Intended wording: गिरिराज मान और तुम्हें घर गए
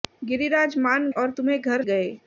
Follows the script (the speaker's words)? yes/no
yes